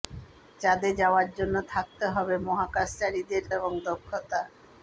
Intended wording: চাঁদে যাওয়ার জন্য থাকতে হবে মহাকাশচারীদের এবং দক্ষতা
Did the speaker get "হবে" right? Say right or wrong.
right